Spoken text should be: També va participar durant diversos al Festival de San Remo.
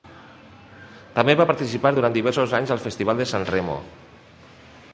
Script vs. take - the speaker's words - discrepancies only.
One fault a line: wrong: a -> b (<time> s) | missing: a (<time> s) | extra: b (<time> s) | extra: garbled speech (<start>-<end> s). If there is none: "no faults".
extra: anys (2.6 s)